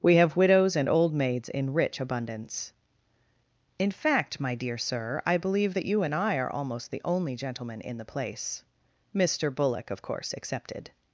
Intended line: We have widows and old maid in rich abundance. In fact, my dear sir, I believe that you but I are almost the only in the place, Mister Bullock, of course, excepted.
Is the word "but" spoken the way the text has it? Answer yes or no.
no